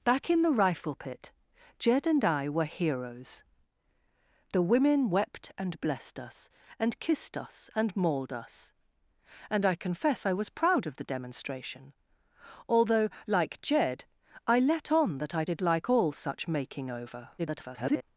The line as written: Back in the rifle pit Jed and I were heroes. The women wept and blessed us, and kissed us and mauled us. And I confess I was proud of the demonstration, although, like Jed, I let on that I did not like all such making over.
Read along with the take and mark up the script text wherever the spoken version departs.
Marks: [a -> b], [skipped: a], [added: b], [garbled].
Back in the rifle pit Jed and I were heroes. The women wept and blessed us, and kissed us and mauled us. And I confess I was proud of the demonstration, although, like Jed, I let on that I did [skipped: not] like all such making over. [garbled]